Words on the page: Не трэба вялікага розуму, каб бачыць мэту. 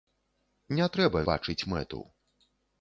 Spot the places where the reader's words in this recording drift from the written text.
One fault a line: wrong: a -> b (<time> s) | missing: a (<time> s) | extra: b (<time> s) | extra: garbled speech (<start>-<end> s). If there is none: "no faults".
missing: вялікага розуму каб (1.2 s)